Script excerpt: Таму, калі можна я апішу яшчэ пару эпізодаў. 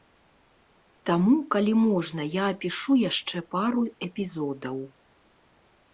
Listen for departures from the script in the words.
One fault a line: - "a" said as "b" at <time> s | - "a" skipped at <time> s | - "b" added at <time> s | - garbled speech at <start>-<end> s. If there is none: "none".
none